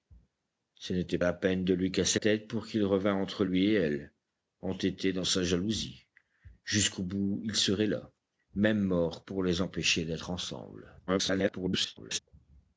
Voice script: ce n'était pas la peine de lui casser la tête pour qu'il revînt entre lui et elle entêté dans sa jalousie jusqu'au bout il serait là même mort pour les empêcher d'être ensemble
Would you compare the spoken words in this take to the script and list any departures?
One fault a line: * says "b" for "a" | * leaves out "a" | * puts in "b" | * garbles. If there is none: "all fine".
* leaves out "pas"
* leaves out "la"
* garbles